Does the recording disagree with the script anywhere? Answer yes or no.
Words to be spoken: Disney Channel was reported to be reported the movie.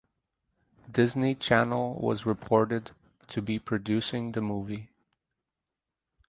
yes